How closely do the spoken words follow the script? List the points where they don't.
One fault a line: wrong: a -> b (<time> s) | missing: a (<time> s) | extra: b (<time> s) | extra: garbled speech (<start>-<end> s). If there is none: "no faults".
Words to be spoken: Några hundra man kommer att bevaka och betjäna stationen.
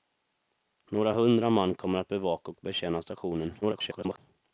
extra: garbled speech (3.6-4.2 s)